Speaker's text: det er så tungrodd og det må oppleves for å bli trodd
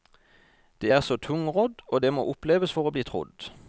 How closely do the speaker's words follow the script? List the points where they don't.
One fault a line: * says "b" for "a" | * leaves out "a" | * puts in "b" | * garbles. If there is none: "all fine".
all fine